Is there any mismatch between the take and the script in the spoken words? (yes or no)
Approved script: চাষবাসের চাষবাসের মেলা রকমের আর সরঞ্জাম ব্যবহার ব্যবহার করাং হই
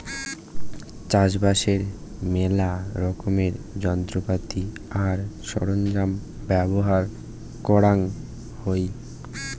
yes